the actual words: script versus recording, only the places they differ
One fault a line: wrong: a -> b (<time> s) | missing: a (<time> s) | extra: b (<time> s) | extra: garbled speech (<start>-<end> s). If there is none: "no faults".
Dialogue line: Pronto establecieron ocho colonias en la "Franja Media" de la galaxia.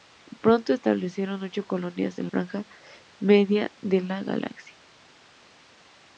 missing: la (2.3 s)